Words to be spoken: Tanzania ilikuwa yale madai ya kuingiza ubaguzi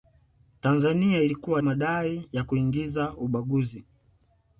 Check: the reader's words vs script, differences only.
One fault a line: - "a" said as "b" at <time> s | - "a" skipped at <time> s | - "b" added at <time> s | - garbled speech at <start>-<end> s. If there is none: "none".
- "yale" skipped at 1.6 s